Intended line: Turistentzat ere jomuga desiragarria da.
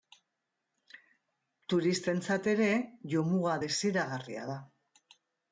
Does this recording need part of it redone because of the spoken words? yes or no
no